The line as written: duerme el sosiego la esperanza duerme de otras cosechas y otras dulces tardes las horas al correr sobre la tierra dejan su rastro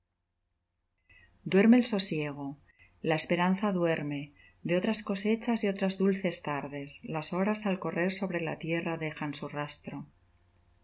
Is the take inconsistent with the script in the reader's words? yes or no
no